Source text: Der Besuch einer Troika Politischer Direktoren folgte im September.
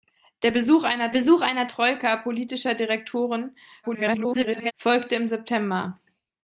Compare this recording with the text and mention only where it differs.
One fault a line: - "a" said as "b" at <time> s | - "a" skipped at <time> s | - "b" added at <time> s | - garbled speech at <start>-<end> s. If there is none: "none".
- "Besuch einer" added at 1.1 s
- garbled speech at 3.8-4.7 s